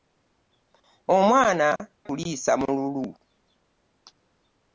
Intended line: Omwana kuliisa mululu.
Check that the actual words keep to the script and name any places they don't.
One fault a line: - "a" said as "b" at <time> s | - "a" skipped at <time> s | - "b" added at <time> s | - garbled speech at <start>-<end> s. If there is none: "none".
none